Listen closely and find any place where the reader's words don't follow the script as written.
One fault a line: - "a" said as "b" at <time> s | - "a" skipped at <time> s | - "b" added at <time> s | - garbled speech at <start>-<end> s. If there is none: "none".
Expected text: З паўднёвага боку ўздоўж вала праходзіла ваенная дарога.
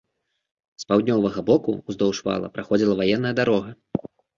none